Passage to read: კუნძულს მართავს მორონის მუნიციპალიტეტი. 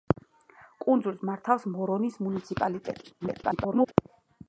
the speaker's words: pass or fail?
fail